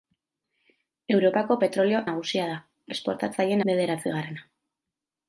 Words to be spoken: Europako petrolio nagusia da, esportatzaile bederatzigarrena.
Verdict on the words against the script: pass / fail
pass